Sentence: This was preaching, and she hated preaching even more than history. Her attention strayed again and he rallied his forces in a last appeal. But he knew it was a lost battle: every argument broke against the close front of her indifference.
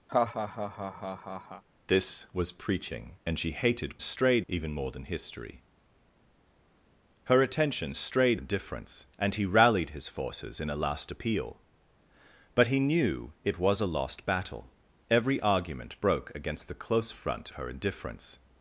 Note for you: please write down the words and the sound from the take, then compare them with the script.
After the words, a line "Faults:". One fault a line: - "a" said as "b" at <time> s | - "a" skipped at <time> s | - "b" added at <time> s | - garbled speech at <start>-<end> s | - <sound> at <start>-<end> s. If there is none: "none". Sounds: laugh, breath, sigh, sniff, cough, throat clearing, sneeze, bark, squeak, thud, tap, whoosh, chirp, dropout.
This was preaching, and she hated strayed even more than history. Her attention strayed indifference and he rallied his forces in a last appeal. But he knew it was a lost battle: every argument broke against the close front her indifference.
Faults:
- laugh at 0.1-1.6 s
- "preaching" said as "strayed" at 4.0 s
- "again" said as "indifference" at 8.3 s
- "of" skipped at 17.5 s